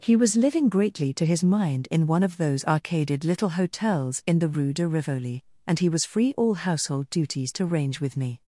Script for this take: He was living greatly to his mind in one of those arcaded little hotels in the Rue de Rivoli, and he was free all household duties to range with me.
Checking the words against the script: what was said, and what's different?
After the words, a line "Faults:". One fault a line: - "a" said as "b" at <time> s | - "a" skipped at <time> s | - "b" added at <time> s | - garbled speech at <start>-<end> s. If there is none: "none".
He was living greatly to his mind in one of those arcaded little hotels in the Rue de Rivoli, and he was free all household duties to range with me.
Faults:
none